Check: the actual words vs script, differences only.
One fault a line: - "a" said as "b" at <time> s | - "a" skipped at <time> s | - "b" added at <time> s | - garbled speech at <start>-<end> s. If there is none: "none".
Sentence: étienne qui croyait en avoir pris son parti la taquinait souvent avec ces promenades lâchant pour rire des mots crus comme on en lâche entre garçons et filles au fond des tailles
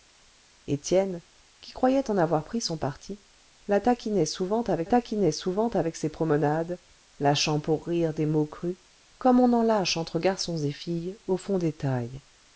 - "taquinait souvent avec" added at 4.8 s